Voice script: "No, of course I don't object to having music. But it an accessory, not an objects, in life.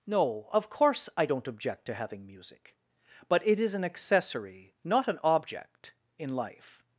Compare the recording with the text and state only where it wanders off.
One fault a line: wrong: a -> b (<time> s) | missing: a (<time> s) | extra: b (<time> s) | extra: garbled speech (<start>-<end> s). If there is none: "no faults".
extra: is (3.6 s)
wrong: objects -> object (5.2 s)